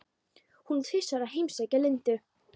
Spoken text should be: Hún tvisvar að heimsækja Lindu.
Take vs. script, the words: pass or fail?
pass